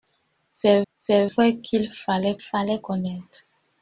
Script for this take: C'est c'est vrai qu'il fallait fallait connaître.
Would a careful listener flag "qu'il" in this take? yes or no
no